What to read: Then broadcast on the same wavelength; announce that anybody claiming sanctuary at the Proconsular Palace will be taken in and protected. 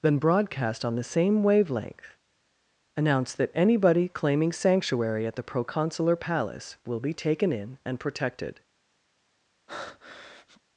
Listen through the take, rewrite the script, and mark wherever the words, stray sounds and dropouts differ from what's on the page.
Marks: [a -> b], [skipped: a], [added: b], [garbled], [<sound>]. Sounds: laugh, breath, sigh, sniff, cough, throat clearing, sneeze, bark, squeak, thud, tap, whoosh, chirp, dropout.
Then broadcast on the same wavelength; announce that anybody claiming sanctuary at the Proconsular Palace will be taken in and protected. [breath]